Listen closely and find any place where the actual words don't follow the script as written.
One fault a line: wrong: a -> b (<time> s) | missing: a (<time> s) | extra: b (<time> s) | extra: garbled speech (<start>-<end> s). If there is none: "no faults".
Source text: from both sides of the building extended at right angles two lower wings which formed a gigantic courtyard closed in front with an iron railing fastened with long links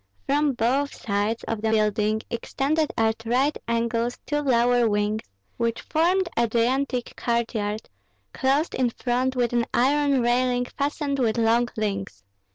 no faults